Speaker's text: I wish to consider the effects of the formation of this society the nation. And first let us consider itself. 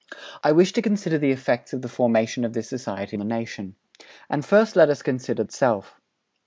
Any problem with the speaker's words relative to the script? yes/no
no